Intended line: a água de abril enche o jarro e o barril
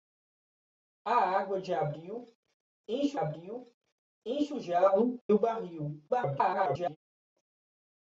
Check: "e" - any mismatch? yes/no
yes